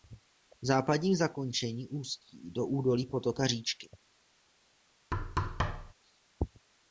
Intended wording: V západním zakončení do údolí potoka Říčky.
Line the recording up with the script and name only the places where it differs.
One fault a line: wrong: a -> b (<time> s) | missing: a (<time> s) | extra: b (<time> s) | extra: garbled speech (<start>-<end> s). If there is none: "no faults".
extra: ústí (1.9 s)